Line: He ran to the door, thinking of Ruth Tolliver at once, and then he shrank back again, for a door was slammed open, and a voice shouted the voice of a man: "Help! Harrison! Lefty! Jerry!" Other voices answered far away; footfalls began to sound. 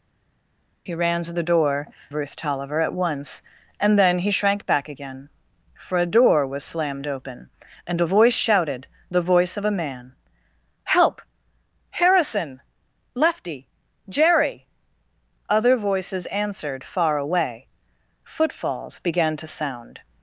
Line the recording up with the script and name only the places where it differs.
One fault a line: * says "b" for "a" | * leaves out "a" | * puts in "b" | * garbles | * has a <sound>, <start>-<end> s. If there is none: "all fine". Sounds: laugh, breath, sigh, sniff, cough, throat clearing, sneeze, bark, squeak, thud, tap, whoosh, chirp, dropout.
* leaves out "thinking of"